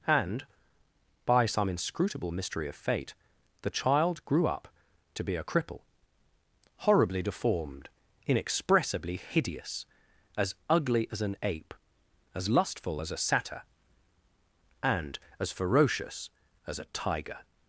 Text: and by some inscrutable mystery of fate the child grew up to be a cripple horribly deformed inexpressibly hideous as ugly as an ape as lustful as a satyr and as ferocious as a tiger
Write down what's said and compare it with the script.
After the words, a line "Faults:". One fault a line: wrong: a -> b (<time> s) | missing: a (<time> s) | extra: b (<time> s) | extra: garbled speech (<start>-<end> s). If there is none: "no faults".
and by some inscrutable mystery of fate the child grew up to be a cripple horribly deformed inexpressibly hideous as ugly as an ape as lustful as a satyr and as ferocious as a tiger
Faults:
no faults